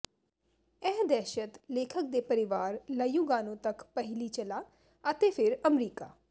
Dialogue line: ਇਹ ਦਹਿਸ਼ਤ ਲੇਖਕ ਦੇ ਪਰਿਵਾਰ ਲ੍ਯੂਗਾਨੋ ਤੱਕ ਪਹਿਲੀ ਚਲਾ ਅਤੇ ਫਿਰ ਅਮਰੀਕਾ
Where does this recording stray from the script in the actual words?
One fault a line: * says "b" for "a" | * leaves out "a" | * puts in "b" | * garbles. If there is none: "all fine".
all fine